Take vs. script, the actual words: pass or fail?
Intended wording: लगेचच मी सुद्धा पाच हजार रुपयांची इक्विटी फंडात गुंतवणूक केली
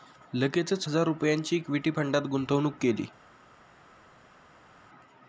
fail